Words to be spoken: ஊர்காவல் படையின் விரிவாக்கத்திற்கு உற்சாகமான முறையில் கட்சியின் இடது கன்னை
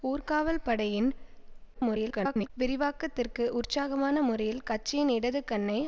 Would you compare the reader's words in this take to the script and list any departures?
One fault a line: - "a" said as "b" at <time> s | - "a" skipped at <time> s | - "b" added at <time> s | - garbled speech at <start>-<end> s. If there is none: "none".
- garbled speech at 1.7-2.5 s